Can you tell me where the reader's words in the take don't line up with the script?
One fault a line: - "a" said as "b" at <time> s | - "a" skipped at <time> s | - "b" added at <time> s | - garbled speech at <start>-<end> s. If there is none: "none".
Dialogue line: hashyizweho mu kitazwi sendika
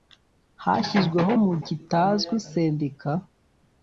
none